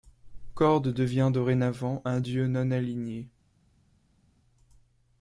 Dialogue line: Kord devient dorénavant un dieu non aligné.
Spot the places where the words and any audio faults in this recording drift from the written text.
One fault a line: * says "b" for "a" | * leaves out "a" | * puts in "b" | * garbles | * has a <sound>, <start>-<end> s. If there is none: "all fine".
all fine